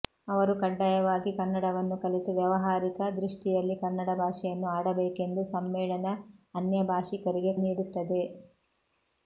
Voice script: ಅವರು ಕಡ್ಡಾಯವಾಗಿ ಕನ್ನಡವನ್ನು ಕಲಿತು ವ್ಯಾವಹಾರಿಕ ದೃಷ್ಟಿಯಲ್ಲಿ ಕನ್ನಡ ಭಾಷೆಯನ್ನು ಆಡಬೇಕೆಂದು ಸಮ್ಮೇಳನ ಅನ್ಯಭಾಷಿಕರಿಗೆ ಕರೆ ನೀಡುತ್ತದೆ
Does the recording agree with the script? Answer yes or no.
no